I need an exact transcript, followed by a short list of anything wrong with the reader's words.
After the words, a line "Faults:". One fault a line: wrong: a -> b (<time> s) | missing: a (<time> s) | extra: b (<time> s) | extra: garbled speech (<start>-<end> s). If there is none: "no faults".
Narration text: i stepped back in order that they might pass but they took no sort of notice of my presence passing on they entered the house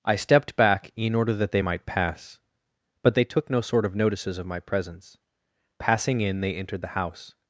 i stepped back in order that they might pass but they took no sort of notices of my presence passing in they entered the house
Faults:
wrong: notice -> notices (3.9 s)
wrong: on -> in (6.2 s)